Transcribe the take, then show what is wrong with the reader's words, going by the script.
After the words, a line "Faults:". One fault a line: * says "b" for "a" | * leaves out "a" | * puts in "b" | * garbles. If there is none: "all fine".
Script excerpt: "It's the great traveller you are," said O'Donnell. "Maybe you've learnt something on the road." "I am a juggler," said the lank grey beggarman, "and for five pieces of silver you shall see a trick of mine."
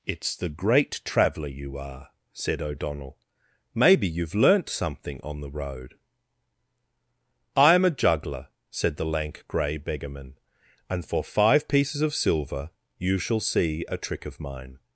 "It's the great traveller you are," said O'Donnell. "Maybe you've learnt something on the road." "I am a juggler," said the lank grey beggarman, "and for five pieces of silver you shall see a trick of mine."
Faults:
all fine